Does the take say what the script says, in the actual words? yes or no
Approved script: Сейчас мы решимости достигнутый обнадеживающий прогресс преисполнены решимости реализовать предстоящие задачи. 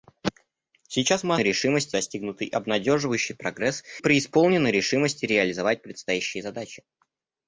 yes